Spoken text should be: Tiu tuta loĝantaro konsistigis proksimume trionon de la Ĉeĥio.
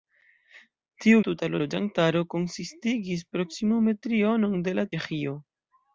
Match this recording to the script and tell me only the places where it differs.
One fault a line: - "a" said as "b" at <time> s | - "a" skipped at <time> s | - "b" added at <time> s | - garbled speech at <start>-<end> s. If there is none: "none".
none